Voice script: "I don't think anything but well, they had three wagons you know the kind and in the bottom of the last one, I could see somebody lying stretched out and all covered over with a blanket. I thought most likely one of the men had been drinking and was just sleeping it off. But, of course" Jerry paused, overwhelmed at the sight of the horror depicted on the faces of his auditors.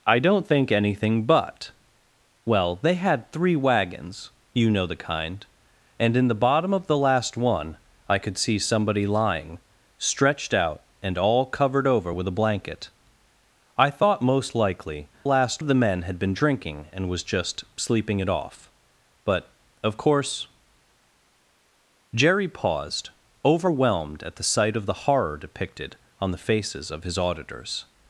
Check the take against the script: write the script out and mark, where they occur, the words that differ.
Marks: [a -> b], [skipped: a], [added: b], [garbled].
"I don't think anything but well, they had three wagons you know the kind and in the bottom of the last one, I could see somebody lying stretched out and all covered over with a blanket. I thought most likely [one -> last] of the men had been drinking and was just sleeping it off. But, of course" Jerry paused, overwhelmed at the sight of the horror depicted on the faces of his auditors.